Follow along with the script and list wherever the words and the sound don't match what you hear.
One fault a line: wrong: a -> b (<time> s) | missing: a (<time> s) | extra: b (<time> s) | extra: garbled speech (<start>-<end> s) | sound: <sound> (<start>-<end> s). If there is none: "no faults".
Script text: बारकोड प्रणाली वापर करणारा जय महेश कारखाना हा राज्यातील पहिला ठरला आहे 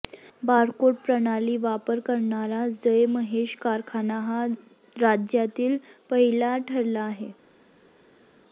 no faults